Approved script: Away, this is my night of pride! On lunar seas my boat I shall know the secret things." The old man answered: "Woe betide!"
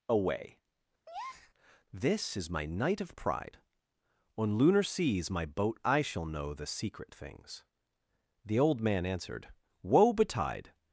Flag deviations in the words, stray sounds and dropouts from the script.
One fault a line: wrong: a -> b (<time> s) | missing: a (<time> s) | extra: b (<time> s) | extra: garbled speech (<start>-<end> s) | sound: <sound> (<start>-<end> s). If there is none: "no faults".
sound: breath (1.1-1.5 s)